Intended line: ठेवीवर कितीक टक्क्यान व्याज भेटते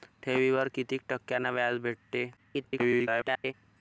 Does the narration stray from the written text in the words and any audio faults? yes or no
yes